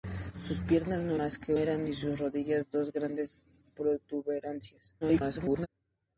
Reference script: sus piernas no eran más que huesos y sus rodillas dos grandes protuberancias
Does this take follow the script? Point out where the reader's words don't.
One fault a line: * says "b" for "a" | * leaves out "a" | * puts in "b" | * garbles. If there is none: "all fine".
* leaves out "eran"
* says "eran" for "huesos"
* garbles